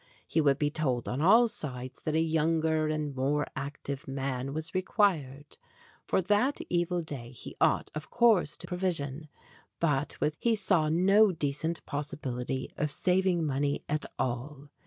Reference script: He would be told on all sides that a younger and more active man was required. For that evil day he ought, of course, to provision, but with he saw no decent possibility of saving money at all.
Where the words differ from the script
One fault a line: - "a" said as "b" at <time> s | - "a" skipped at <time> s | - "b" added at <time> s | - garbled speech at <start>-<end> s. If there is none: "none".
none